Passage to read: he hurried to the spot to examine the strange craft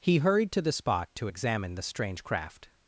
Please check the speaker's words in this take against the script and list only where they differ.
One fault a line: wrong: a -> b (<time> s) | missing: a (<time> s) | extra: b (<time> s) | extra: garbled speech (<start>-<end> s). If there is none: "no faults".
no faults